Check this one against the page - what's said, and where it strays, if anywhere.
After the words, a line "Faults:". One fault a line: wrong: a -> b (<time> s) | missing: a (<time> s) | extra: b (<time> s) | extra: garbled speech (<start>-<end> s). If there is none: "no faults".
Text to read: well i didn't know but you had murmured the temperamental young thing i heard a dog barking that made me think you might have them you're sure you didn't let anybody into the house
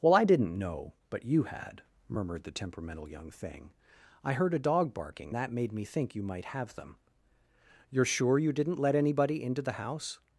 well i didn't know but you had murmured the temperamental young thing i heard a dog barking that made me think you might have them you're sure you didn't let anybody into the house
Faults:
no faults